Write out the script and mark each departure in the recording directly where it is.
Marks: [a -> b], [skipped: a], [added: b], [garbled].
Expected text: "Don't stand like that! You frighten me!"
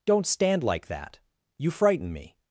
"Don't stand like that! You frighten me!"